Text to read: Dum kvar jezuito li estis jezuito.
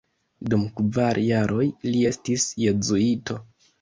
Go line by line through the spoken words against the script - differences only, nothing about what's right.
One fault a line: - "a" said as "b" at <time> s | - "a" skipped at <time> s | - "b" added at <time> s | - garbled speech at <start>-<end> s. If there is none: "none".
- "jezuito" said as "jaroj" at 1.2 s